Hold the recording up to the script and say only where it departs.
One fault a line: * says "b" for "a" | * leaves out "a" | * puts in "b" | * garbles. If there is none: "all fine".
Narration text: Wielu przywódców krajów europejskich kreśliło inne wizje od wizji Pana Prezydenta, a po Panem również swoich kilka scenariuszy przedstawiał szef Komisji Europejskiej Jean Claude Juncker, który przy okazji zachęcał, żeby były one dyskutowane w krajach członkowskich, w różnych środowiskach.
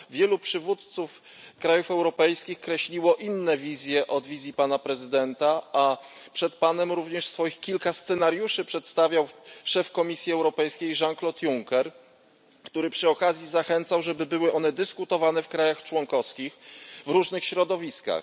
* says "przed" for "po"